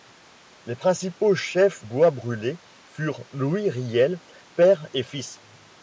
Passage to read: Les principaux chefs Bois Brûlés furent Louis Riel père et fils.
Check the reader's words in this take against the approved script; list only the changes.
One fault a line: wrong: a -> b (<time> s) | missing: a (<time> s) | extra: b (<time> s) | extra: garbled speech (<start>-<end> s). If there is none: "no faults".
no faults